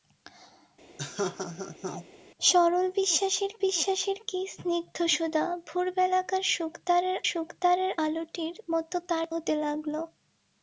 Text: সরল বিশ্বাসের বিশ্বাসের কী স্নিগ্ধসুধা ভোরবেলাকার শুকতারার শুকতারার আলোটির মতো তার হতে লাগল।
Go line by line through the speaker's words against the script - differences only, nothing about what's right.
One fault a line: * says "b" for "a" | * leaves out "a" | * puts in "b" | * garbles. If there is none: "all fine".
all fine